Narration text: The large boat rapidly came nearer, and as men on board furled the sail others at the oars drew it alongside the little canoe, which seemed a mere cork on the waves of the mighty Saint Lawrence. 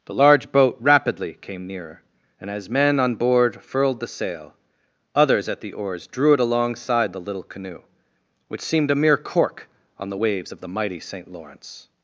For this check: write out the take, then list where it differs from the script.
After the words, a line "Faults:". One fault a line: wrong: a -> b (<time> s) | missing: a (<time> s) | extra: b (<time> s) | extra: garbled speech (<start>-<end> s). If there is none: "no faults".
The large boat rapidly came nearer, and as men on board furled the sail others at the oars drew it alongside the little canoe, which seemed a mere cork on the waves of the mighty Saint Lawrence.
Faults:
no faults